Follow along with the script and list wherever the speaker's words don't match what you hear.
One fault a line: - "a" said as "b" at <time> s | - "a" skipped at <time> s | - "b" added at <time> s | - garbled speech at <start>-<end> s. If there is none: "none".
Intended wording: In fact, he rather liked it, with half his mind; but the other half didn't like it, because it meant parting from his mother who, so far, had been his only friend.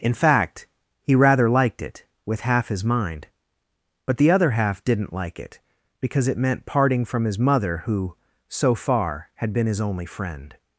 none